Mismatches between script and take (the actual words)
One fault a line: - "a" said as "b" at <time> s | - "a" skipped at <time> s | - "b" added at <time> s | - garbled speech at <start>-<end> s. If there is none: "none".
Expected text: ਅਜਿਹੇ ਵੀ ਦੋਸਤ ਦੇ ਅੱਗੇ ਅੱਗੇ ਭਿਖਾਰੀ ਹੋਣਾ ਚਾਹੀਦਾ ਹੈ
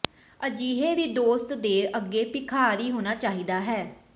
- "ਅੱਗੇ" skipped at 2.2 s